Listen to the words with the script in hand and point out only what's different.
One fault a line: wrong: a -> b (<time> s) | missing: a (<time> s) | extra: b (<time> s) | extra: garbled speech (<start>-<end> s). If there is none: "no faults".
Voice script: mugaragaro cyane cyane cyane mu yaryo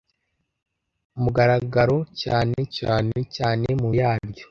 no faults